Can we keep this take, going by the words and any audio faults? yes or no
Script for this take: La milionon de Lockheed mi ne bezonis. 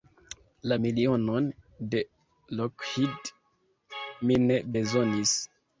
yes